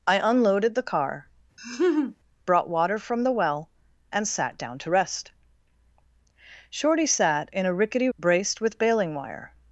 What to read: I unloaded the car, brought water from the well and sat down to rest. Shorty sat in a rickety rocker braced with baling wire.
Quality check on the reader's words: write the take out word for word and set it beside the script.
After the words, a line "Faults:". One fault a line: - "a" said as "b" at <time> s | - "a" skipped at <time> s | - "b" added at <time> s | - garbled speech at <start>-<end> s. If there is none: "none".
I unloaded the car, brought water from the well and sat down to rest. Shorty sat in a rickety braced with baling wire.
Faults:
- "rocker" skipped at 8.1 s